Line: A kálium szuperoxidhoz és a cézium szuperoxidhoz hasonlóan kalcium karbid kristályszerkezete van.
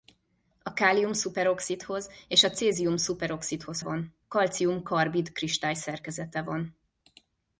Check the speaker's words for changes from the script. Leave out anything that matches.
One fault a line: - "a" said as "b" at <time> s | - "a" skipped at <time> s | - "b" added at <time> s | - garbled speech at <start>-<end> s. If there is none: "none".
- "hasonlóan" said as "van" at 3.8 s